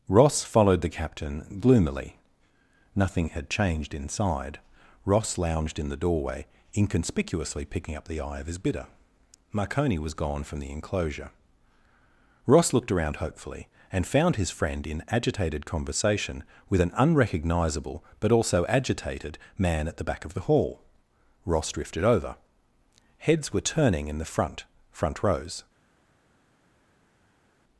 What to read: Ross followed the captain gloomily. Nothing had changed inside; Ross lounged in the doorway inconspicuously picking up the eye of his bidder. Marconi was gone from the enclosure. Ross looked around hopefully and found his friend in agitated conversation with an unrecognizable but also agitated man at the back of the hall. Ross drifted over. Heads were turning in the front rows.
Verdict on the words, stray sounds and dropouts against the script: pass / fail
fail